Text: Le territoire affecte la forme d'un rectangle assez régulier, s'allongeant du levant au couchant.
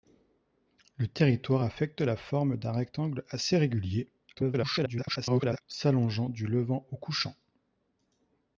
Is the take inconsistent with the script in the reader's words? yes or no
yes